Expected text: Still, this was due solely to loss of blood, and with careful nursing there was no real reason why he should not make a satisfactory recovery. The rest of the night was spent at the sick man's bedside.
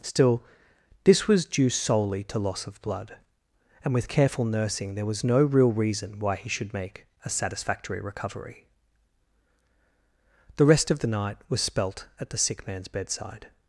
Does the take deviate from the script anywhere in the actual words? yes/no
yes